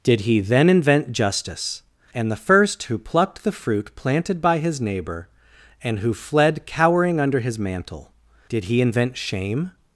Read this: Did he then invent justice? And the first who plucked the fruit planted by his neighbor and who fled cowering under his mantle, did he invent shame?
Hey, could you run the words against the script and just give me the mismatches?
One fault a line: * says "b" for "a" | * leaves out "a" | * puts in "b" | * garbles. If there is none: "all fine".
all fine